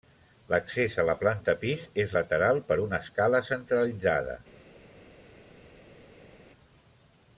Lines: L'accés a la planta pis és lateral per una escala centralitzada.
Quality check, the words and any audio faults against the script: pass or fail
pass